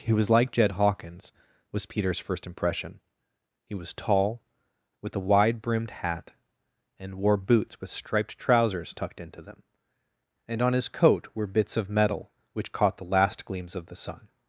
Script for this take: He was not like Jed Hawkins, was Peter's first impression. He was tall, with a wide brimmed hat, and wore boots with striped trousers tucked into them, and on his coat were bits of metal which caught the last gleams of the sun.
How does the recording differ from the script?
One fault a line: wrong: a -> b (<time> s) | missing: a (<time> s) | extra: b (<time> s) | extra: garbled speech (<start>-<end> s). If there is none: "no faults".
missing: not (0.3 s)